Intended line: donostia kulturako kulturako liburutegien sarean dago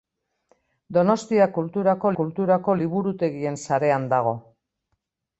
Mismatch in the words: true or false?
false